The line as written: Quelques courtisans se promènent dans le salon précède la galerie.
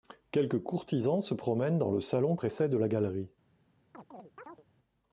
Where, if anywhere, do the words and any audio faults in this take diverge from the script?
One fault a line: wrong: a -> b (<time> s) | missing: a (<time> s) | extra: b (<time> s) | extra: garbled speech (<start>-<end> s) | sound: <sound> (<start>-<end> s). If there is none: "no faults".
sound: chirp (3.9-4.7 s)